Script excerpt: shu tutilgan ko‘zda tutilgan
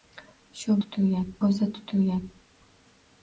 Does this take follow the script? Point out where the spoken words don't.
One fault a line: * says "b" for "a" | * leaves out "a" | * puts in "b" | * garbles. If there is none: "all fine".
all fine